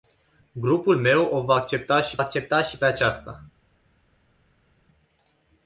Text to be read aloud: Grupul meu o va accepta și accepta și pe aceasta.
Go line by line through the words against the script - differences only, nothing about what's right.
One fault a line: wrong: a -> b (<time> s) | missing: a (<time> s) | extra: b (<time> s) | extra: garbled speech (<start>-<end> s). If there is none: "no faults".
no faults